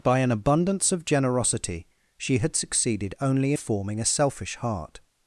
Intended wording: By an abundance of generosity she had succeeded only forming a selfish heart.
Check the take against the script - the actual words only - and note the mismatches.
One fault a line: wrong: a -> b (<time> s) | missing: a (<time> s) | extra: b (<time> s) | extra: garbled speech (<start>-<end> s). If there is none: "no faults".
no faults